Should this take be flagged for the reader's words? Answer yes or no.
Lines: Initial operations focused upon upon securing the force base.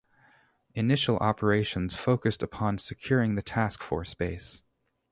yes